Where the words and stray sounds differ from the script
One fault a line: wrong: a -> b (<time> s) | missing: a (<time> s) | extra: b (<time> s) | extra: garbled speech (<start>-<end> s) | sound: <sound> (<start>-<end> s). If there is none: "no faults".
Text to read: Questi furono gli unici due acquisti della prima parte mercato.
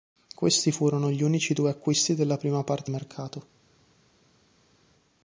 no faults